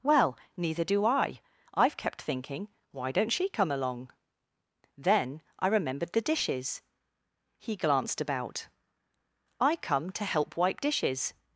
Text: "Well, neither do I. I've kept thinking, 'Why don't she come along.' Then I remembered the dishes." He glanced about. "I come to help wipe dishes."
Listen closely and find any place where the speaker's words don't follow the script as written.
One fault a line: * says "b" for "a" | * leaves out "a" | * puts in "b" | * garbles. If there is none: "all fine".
all fine